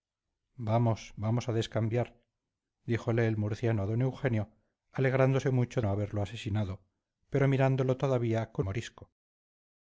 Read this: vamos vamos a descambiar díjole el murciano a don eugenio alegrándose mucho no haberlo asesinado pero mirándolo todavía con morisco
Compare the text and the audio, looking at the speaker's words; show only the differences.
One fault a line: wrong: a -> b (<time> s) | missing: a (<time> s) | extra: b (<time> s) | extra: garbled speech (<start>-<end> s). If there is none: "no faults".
no faults